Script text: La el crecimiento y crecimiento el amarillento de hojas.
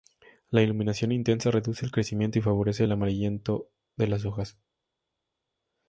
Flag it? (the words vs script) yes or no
yes